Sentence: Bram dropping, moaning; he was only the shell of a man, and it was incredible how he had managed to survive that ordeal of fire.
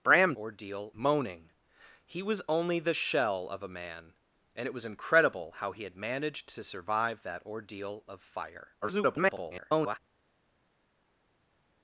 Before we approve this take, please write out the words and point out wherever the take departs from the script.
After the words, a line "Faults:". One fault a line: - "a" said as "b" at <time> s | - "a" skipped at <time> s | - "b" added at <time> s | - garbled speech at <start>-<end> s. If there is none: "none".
Bram ordeal, moaning; he was only the shell of a man, and it was incredible how he had managed to survive that ordeal of fire. [garbled]
Faults:
- "dropping" said as "ordeal" at 0.4 s
- garbled speech at 8.8-10.0 s